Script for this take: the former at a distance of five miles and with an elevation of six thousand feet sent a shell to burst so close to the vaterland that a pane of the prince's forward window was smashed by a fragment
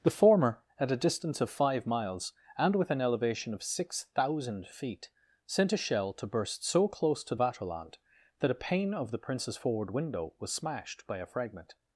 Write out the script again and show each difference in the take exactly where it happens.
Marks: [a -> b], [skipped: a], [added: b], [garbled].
the former at a distance of five miles and with an elevation of six thousand feet sent a shell to burst so close to [skipped: the] vaterland that a pane of the prince's forward window was smashed by a fragment